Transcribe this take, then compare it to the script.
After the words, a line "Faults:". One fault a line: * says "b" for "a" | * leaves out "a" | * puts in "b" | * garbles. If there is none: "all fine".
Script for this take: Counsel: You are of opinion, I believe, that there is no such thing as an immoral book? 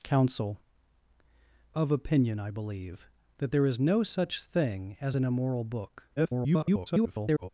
Counsel: Of opinion, I believe, that there is no such thing as an immoral book? [garbled]
Faults:
* leaves out "You are"
* garbles